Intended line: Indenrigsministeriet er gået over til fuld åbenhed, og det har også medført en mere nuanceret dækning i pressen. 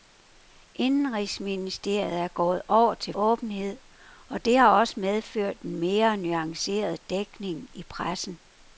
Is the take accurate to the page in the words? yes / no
no